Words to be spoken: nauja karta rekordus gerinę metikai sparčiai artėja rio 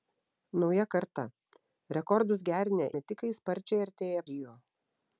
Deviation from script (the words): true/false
false